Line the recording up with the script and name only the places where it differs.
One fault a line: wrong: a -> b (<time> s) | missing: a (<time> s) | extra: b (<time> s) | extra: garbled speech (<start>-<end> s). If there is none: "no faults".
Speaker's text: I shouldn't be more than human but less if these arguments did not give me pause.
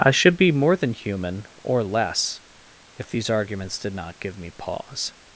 wrong: shouldn't -> should (0.1 s)
wrong: but -> or (1.6 s)